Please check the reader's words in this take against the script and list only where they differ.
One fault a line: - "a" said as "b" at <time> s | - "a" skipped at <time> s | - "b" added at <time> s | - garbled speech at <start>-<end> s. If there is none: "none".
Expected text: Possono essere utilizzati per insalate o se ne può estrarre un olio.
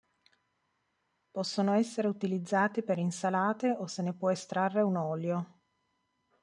none